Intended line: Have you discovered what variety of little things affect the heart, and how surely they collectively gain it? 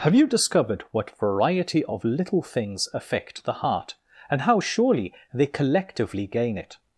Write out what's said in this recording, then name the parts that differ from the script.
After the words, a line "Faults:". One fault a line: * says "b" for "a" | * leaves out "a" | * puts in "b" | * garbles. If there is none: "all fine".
Have you discovered what variety of little things affect the heart, and how surely they collectively gain it?
Faults:
all fine